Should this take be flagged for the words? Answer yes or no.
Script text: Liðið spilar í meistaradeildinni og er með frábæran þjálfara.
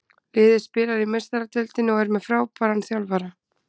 no